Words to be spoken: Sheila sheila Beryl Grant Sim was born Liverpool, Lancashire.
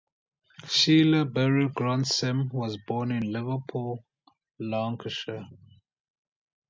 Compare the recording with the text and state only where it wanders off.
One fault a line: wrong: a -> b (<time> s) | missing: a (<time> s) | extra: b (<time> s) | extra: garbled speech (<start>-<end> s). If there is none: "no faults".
missing: sheila (1.2 s)
extra: in (3.1 s)